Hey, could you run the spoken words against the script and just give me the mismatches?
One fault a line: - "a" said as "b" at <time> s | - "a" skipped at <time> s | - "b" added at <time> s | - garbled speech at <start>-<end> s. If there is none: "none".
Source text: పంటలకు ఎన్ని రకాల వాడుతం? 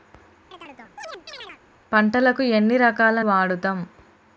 none